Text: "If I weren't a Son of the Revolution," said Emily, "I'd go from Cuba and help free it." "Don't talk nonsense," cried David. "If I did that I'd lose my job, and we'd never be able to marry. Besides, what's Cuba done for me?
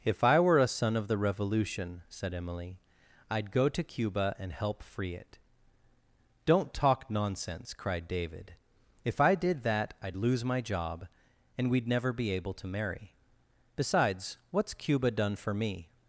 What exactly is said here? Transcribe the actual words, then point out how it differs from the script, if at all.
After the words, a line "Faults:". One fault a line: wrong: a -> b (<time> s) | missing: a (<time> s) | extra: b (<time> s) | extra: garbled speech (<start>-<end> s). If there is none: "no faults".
"If I were a Son of the Revolution," said Emily, "I'd go to Cuba and help free it." "Don't talk nonsense," cried David. "If I did that I'd lose my job, and we'd never be able to marry. Besides, what's Cuba done for me?
Faults:
wrong: weren't -> were (0.4 s)
wrong: from -> to (3.7 s)